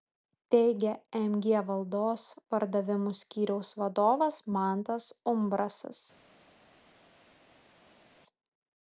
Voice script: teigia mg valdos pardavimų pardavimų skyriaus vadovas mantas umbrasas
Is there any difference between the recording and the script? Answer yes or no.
yes